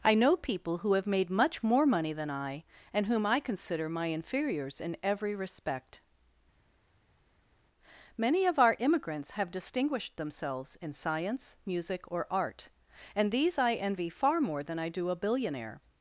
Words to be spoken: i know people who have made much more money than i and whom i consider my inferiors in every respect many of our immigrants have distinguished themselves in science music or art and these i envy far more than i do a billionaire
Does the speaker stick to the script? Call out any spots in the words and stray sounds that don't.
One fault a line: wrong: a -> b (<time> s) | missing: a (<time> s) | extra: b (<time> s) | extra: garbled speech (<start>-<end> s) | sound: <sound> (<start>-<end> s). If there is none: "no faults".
no faults